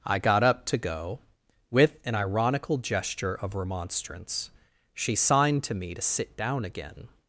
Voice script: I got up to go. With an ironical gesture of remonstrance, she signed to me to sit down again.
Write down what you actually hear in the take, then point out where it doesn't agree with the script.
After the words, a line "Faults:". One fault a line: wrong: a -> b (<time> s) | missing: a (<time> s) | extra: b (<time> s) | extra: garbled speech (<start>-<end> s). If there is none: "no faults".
I got up to go. With an ironical gesture of remonstrance, she signed to me to sit down again.
Faults:
no faults